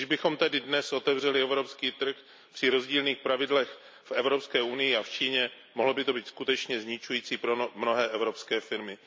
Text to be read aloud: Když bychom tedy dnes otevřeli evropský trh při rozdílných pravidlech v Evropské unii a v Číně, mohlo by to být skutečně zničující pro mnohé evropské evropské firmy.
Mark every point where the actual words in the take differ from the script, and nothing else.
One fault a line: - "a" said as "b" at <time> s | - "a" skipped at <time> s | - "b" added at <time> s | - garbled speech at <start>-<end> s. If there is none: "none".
- "evropské" skipped at 8.6 s